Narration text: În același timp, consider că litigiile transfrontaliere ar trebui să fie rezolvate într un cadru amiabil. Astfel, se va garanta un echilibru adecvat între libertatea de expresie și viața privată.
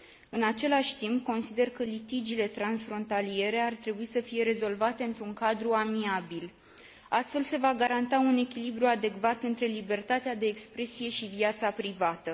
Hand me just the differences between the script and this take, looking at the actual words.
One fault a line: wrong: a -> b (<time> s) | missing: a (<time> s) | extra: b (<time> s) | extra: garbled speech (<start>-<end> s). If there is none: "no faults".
no faults